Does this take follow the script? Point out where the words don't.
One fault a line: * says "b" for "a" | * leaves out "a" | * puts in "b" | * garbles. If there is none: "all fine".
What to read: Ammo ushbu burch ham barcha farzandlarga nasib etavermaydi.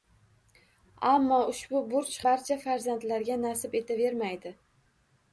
* leaves out "ham"